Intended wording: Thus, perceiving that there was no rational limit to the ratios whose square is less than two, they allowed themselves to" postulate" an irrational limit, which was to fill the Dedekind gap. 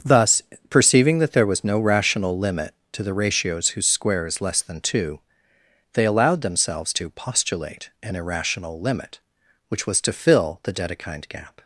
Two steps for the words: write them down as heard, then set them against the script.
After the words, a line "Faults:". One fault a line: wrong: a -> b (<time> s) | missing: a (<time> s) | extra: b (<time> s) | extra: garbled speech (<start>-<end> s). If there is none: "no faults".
Thus, perceiving that there was no rational limit to the ratios whose square is less than two, they allowed themselves to" postulate" an irrational limit, which was to fill the Dedekind gap.
Faults:
no faults